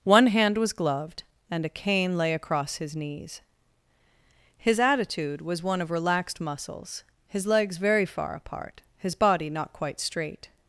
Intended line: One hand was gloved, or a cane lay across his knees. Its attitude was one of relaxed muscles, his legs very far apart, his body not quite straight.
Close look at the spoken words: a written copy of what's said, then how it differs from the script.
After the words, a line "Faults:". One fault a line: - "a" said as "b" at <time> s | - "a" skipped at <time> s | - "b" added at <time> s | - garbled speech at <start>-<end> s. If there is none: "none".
One hand was gloved, and a cane lay across his knees. His attitude was one of relaxed muscles, his legs very far apart, his body not quite straight.
Faults:
- "or" said as "and" at 1.5 s
- "Its" said as "His" at 4.6 s